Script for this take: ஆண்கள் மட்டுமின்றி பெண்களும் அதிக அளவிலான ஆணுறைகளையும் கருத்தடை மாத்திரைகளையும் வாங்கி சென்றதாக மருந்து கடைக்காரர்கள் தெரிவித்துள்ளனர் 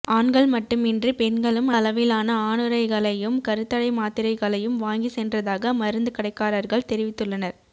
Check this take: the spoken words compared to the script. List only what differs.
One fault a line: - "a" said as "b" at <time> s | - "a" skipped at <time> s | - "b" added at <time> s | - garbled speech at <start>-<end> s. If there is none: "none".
- "அதிக" skipped at 1.7 s